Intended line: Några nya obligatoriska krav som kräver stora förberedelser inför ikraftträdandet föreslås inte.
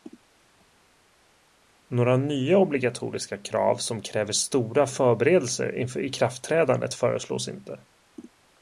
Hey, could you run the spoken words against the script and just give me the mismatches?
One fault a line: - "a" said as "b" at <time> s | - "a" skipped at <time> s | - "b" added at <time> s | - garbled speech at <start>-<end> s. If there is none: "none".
none